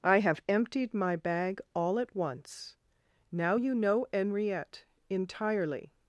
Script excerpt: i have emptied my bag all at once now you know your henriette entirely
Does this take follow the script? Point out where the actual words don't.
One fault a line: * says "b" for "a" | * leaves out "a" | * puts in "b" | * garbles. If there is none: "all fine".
* leaves out "your"